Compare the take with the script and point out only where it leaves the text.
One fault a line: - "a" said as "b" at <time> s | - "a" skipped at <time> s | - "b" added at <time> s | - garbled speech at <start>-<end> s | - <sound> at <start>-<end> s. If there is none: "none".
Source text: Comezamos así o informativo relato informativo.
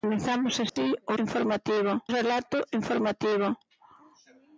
- dropout at 0.7-0.8 s